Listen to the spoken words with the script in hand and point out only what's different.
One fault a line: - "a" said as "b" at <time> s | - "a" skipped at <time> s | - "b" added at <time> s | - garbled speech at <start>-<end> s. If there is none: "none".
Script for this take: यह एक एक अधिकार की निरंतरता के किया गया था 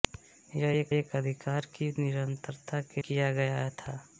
none